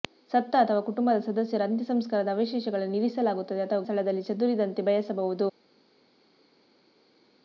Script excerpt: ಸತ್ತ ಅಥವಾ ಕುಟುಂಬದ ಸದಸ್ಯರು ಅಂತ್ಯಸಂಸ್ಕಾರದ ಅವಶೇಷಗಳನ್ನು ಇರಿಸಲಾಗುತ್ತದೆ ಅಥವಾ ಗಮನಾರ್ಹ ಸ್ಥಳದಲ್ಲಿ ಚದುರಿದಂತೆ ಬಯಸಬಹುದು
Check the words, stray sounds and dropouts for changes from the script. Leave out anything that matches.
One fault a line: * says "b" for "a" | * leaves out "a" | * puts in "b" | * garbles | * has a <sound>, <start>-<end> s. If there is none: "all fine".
* leaves out "ಗಮನಾರ್ಹ"